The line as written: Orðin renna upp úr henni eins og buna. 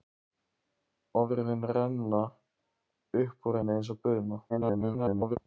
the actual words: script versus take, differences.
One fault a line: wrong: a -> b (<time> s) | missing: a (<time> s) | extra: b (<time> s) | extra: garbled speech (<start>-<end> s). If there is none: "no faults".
extra: garbled speech (4.5-5.4 s)